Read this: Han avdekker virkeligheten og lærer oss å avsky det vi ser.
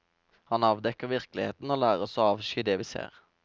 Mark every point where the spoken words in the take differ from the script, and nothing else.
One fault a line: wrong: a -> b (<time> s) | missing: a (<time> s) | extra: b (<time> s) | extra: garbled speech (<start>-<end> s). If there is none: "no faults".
no faults